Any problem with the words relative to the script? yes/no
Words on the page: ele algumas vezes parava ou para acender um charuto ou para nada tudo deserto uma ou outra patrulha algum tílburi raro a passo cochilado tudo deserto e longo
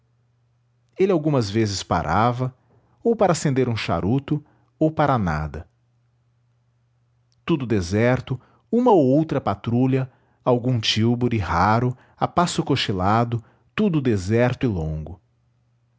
no